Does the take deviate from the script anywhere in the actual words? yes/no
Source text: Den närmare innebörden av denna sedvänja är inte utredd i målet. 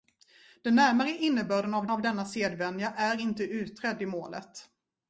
yes